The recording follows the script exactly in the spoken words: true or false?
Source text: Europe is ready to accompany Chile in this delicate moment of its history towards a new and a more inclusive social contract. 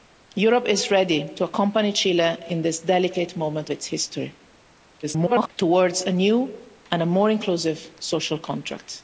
false